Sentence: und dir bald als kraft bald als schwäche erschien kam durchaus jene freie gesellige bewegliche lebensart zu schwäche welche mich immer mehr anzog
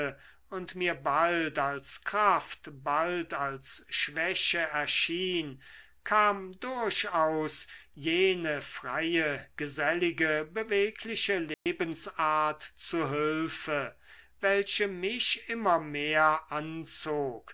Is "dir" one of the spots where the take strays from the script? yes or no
yes